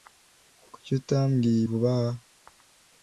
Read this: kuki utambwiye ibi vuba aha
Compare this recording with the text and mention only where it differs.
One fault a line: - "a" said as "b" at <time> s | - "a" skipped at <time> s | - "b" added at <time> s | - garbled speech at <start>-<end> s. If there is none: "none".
- "ibi" skipped at 1.6 s